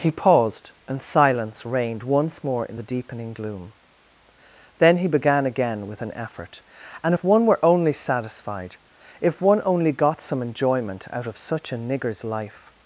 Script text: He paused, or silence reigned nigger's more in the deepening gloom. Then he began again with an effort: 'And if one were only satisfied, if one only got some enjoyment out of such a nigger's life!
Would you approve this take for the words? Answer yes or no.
no